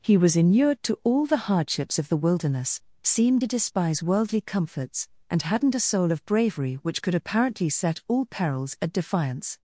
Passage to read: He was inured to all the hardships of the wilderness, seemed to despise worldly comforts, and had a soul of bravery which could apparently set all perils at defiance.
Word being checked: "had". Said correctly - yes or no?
no